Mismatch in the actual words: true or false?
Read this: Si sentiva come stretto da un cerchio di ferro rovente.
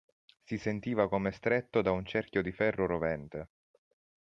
false